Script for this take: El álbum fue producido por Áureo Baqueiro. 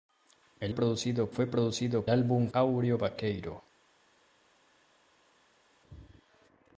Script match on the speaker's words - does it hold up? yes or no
no